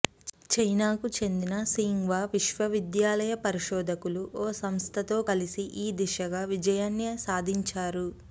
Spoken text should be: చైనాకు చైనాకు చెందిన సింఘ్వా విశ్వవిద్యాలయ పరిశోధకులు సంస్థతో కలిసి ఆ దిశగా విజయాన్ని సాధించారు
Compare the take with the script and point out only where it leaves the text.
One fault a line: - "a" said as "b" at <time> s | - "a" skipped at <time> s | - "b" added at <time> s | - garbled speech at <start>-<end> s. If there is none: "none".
- "చైనాకు" skipped at 1.1 s
- "ఓ" added at 4.4 s
- "ఆ" said as "ఈ" at 5.8 s